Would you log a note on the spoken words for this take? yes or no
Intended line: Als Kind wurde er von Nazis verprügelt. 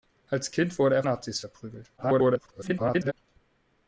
yes